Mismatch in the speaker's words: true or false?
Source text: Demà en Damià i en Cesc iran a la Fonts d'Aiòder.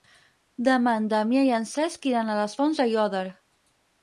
true